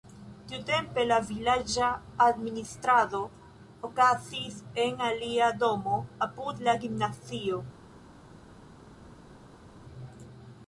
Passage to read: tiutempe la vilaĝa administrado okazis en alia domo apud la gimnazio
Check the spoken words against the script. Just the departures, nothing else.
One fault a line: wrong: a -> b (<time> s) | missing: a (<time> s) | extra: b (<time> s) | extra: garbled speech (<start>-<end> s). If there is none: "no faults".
no faults